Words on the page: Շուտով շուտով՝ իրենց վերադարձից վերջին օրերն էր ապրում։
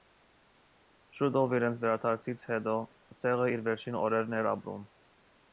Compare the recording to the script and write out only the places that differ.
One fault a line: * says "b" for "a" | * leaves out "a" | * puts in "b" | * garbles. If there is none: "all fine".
* leaves out "շուտով"
* puts in "հետո ցեղը իր"